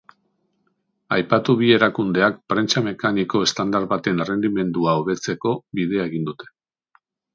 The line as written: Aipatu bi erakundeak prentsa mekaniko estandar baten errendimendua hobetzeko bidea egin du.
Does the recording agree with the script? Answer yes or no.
no